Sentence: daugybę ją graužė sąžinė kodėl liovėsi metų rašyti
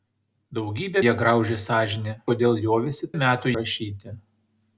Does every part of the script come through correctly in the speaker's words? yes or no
yes